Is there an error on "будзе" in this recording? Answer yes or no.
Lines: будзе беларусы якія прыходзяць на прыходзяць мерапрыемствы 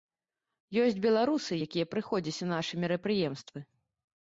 yes